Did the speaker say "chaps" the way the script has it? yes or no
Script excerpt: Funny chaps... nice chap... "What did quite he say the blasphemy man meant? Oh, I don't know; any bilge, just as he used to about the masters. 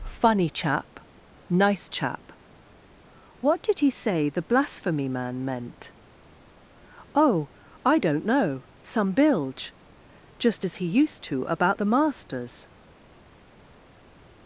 no